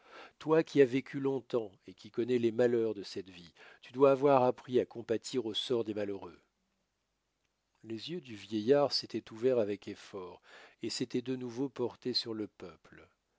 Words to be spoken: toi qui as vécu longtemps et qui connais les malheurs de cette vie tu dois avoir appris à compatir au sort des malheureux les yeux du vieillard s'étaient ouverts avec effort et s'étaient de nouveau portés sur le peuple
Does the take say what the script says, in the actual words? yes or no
yes